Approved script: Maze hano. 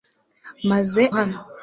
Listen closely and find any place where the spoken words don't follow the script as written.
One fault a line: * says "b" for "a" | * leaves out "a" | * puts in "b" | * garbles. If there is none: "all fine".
all fine